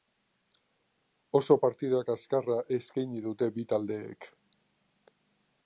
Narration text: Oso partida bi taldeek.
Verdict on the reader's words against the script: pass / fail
fail